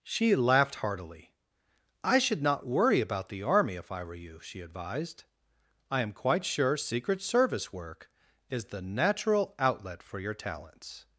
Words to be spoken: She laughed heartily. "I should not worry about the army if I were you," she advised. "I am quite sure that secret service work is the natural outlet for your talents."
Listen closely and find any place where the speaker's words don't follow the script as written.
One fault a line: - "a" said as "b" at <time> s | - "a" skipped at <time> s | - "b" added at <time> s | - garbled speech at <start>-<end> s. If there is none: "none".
- "that" skipped at 6.8 s